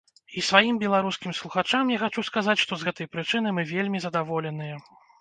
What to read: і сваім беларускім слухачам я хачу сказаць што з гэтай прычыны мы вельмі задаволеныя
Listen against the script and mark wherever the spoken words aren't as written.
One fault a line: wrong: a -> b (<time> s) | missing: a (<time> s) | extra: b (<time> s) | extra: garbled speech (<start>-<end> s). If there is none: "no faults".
no faults